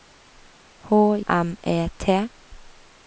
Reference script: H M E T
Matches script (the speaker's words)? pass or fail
pass